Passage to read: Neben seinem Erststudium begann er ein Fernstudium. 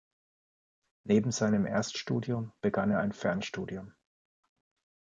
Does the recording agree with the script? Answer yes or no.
yes